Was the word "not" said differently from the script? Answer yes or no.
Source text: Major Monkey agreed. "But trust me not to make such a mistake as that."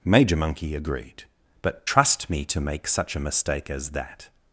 yes